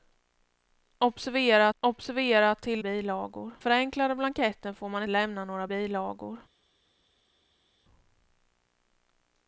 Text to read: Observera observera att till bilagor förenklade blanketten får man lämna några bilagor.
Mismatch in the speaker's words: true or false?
false